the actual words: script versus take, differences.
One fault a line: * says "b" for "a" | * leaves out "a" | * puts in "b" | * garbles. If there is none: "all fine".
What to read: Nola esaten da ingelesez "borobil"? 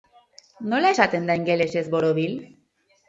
all fine